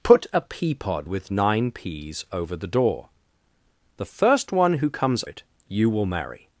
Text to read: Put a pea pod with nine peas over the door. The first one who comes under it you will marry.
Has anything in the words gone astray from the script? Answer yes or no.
yes